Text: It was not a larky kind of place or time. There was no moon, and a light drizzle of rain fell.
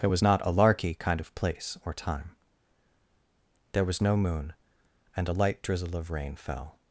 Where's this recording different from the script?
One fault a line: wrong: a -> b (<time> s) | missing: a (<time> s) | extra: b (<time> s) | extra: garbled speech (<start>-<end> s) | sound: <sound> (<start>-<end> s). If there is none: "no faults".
no faults